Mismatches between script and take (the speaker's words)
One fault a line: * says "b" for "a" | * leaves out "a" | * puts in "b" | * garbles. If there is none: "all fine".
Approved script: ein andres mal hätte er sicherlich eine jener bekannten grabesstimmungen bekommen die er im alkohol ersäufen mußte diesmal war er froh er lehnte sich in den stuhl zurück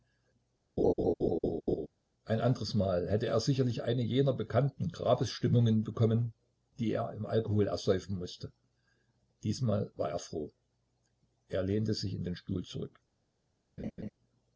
all fine